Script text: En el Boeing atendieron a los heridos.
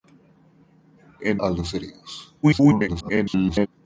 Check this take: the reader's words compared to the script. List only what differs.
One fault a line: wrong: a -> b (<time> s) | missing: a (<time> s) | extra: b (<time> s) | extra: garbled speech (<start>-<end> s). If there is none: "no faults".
missing: el Boeing atendieron (1.4 s)
extra: garbled speech (2.4-3.7 s)